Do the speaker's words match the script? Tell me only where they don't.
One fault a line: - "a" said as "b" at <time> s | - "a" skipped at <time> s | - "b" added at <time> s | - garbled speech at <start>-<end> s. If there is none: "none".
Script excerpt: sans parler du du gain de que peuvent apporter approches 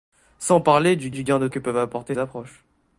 none